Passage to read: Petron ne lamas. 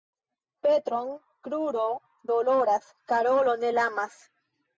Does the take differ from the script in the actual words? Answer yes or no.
yes